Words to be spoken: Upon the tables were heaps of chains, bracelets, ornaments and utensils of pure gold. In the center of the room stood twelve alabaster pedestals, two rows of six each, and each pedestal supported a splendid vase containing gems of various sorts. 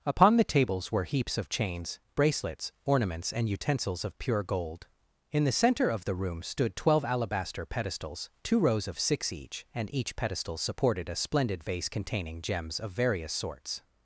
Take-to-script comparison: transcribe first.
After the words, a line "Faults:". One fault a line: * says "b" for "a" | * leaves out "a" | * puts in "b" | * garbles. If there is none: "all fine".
Upon the tables were heaps of chains, bracelets, ornaments and utensils of pure gold. In the center of the room stood twelve alabaster pedestals, two rows of six each, and each pedestal supported a splendid vase containing gems of various sorts.
Faults:
all fine